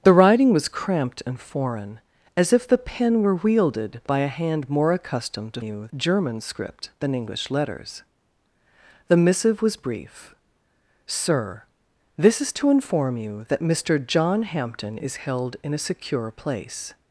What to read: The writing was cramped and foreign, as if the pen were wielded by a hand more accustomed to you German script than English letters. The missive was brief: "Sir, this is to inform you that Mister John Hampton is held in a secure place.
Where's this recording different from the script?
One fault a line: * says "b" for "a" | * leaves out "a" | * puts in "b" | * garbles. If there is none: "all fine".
all fine